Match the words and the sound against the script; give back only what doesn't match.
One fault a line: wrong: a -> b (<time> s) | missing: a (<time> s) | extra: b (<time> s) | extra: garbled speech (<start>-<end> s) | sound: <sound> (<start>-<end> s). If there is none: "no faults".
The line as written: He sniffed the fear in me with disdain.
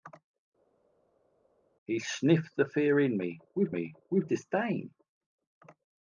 extra: me with (3.7 s)